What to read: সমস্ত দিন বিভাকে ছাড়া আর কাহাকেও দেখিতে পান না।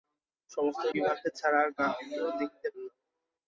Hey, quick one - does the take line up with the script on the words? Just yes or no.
no